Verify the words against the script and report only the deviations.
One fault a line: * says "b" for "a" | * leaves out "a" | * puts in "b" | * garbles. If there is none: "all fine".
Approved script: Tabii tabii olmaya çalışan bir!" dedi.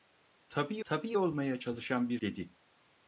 all fine